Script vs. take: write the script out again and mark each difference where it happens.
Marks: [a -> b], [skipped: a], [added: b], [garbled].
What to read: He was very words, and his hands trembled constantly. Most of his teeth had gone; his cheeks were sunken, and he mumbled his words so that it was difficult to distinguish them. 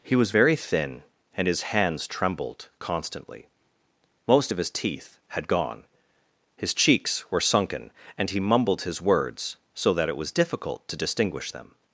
He was very [words, -> thin] and his hands trembled constantly. Most of his teeth had gone; his cheeks were sunken, and he mumbled his words so that it was difficult to distinguish them.